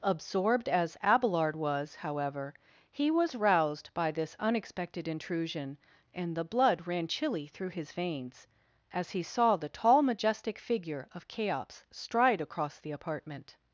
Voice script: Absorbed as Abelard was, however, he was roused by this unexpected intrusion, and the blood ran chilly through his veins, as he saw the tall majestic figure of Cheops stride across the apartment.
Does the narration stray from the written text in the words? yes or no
no